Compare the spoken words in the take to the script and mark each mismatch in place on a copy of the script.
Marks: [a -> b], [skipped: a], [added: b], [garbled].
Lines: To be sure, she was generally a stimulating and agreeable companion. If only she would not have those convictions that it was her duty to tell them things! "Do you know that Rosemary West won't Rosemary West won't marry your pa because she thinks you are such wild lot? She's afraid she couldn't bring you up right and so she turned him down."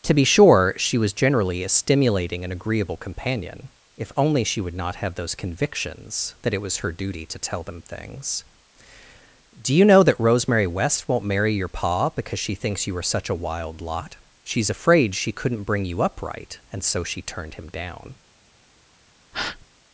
To be sure, she was generally a stimulating and agreeable companion. If only she would not have those convictions that it was her duty to tell them things! "Do you know that Rosemary West won't [skipped: Rosemary West won't] marry your pa because she thinks you are such [added: a] wild lot? She's afraid she couldn't bring you up right and so she turned him down."